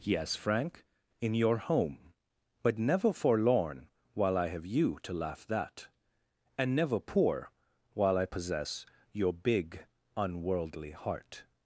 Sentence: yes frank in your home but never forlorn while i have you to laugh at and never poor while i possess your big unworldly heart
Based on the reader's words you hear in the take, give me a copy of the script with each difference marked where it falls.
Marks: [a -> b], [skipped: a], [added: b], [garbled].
yes frank in your home but never forlorn while i have you to laugh [at -> that] and never poor while i possess your big unworldly heart